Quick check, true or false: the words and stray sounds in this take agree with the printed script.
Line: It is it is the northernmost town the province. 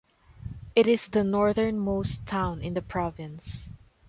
false